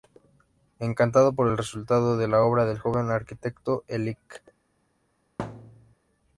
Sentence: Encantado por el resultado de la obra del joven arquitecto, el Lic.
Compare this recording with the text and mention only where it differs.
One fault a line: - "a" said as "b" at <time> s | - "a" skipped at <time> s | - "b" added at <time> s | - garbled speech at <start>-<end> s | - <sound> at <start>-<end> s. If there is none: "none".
- thud at 5.4-6.0 s